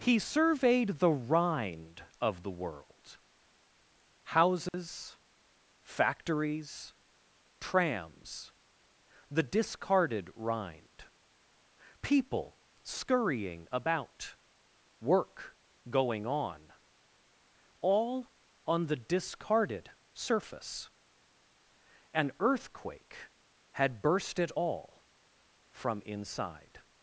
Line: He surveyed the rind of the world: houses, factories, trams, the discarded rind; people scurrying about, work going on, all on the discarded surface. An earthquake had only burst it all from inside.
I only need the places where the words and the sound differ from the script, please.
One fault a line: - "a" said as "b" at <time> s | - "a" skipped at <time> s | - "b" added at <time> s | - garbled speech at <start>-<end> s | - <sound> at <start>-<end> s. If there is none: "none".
- dropout at 4.7-4.7 s
- "only" skipped at 24.0 s